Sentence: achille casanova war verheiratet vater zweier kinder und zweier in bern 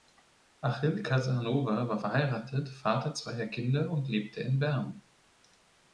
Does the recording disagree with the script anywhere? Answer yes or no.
yes